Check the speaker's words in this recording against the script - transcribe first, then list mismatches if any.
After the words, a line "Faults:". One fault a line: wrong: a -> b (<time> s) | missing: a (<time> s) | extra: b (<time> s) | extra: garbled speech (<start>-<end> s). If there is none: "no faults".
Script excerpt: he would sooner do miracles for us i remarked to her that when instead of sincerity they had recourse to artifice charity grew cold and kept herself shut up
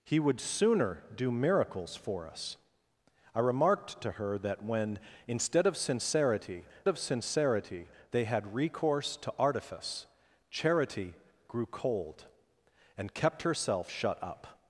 he would sooner do miracles for us i remarked to her that when instead of sincerity of sincerity they had recourse to artifice charity grew cold and kept herself shut up
Faults:
extra: of sincerity (6.9 s)